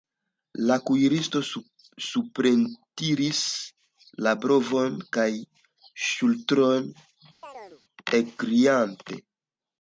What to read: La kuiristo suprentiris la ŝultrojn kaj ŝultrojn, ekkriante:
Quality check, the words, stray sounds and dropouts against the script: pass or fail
fail